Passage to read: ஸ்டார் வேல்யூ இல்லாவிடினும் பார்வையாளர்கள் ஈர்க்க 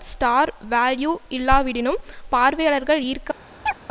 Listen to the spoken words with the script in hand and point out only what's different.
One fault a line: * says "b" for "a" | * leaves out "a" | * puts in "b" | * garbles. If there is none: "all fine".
all fine